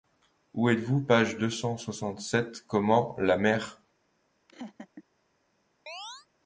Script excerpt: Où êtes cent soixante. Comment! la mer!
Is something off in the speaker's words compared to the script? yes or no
yes